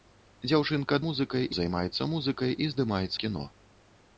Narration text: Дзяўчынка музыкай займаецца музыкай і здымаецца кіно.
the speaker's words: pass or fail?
pass